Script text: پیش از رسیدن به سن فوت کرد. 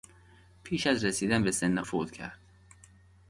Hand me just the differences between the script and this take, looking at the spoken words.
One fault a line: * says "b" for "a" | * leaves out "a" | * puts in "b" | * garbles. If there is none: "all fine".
all fine